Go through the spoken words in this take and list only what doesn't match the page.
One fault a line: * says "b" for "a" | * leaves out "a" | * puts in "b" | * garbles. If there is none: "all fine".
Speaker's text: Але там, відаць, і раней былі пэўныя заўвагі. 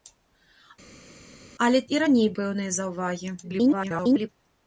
* leaves out "там відаць"
* leaves out "былі"
* garbles